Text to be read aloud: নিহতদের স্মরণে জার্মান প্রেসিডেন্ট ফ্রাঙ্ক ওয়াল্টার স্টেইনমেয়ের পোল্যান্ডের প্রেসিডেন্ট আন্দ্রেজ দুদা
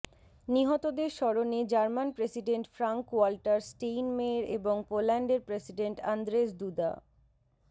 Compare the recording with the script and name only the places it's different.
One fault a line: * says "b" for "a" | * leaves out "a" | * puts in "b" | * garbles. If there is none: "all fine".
* puts in "এবং"